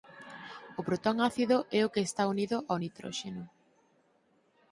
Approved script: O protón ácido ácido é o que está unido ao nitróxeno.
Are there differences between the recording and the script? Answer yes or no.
yes